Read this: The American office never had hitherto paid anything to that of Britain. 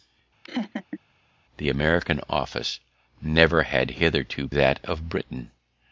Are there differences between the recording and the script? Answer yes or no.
yes